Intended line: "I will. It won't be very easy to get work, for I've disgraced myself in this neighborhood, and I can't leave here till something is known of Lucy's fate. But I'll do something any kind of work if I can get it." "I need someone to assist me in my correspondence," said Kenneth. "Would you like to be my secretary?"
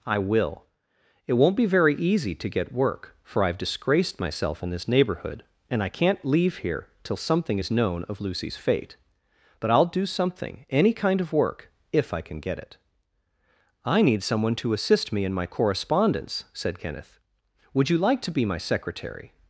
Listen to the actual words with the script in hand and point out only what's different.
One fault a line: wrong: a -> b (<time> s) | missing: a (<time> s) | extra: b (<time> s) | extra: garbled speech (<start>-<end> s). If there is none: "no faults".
no faults